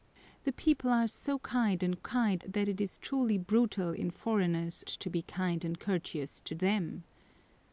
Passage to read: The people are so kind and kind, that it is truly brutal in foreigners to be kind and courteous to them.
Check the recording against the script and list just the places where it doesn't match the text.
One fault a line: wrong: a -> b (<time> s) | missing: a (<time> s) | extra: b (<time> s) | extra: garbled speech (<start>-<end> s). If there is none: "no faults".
no faults